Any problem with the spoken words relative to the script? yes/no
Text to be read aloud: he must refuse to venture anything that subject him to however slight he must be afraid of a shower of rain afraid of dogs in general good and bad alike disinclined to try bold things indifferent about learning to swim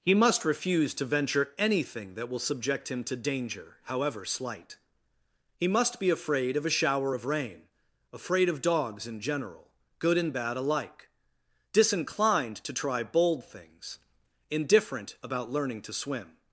yes